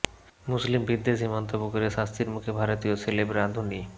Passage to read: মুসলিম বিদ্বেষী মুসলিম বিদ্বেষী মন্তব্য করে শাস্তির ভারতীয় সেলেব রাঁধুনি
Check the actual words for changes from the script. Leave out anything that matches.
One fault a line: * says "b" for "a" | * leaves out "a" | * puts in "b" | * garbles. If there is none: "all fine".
* leaves out "মুসলিম বিদ্বেষী"
* puts in "মুখে"